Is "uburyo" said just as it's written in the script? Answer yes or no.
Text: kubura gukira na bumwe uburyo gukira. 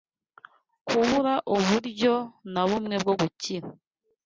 no